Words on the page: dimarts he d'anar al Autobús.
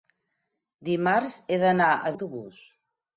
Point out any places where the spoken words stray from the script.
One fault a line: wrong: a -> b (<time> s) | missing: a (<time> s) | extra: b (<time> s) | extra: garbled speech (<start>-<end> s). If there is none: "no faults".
no faults